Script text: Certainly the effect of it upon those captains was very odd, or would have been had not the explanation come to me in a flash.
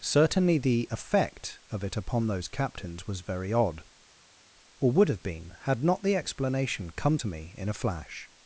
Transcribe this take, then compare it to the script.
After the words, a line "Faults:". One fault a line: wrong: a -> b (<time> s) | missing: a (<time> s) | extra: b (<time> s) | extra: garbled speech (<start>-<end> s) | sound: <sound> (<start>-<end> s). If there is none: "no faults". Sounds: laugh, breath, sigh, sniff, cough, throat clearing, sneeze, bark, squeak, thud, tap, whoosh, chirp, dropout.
Certainly the effect of it upon those captains was very odd, or would have been had not the explanation come to me in a flash.
Faults:
no faults